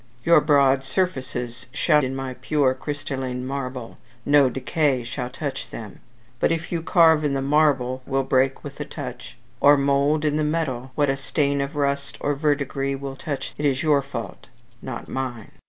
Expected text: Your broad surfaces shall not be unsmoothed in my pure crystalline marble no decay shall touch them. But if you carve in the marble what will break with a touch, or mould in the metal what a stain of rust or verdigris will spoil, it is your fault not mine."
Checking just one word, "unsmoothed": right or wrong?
wrong